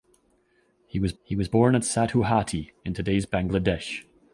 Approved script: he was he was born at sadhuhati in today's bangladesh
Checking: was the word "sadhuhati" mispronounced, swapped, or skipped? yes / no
no